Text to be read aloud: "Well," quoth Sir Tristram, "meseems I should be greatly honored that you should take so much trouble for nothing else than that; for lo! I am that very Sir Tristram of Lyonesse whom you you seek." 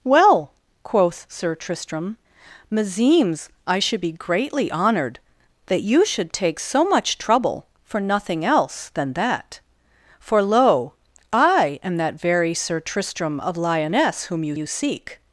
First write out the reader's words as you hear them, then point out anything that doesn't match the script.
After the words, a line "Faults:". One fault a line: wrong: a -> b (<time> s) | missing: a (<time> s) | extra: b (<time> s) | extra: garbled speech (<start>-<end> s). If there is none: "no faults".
"Well," quoth Sir Tristram, "meseems I should be greatly honored that you should take so much trouble for nothing else than that; for lo! I am that very Sir Tristram of Lyonesse whom you you seek."
Faults:
no faults